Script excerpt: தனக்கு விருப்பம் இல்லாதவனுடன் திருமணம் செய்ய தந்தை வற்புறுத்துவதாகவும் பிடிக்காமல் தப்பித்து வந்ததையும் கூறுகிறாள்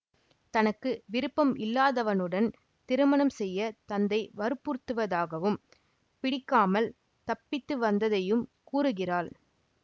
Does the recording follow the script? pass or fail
pass